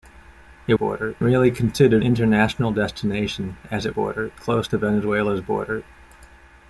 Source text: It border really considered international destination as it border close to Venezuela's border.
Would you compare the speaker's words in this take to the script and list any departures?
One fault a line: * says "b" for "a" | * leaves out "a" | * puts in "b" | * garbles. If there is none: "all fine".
all fine